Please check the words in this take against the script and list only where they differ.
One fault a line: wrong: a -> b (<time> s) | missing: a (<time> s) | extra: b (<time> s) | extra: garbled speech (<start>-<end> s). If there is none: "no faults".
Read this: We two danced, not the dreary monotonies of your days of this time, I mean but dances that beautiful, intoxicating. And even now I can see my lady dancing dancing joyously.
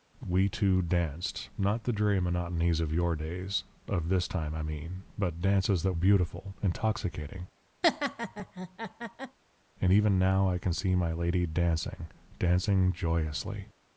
no faults